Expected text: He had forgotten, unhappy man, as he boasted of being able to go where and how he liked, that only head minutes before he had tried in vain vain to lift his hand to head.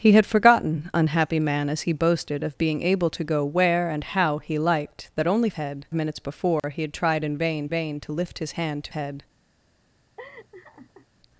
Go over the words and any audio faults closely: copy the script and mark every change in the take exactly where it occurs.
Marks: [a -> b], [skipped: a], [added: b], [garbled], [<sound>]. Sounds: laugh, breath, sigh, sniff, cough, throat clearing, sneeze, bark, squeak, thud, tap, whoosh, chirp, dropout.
He had forgotten, unhappy man, as he boasted of being able to go where and how he liked, that only head minutes before [dropout] he had tried in vain vain to lift his hand to head. [laugh]